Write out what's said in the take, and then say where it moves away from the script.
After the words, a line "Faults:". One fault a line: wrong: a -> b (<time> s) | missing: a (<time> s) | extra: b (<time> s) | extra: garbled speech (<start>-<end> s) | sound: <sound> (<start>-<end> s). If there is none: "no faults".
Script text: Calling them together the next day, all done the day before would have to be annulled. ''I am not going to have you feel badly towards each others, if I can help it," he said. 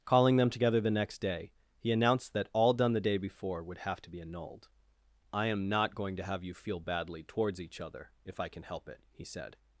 Calling them together the next day, he announced that all done the day before would have to be annulled. ''I am not going to have you feel badly towards each other, if I can help it," he said.
Faults:
extra: he announced that (1.8 s)
wrong: others -> other (7.8 s)